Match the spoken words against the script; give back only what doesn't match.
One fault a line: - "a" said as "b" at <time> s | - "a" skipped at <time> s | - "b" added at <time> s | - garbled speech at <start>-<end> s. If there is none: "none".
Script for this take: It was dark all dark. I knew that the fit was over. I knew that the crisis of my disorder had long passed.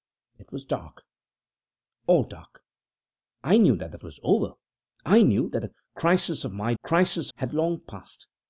- "fit" skipped at 4.0 s
- "disorder" said as "crisis" at 6.8 s